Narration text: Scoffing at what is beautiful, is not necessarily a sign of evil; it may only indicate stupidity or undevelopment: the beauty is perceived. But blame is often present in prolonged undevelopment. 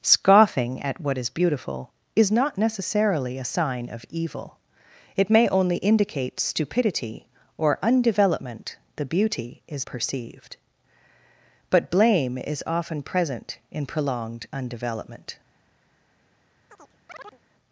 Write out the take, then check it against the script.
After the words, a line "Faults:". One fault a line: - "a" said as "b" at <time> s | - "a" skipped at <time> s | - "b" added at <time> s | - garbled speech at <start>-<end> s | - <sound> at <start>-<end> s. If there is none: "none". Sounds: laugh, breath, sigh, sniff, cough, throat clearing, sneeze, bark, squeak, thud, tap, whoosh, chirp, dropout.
Scoffing at what is beautiful, is not necessarily a sign of evil; it may only indicate stupidity or undevelopment: the beauty is perceived. But blame is often present in prolonged undevelopment.
Faults:
- chirp at 16.7-17.4 s